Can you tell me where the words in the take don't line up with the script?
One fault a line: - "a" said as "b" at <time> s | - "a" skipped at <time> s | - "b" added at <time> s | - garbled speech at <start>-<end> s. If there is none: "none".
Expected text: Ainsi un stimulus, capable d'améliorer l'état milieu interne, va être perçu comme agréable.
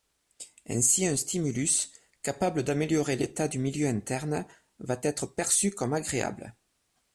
- "du" added at 3.5 s